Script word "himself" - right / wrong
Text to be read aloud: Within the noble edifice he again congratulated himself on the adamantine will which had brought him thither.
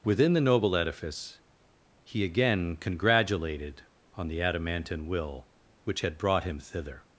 wrong